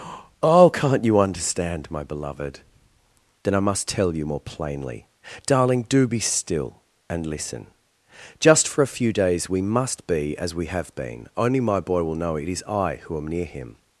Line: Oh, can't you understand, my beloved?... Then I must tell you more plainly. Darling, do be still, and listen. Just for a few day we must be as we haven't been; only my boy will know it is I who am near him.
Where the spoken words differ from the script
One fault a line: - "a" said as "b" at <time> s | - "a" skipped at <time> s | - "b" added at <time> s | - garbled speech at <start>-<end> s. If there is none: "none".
- "day" said as "days" at 9.1 s
- "haven't" said as "have" at 10.7 s